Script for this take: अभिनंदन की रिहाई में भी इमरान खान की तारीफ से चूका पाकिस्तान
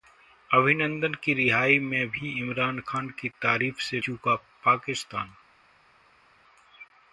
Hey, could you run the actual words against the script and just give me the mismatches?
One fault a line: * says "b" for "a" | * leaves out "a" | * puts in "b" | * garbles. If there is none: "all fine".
all fine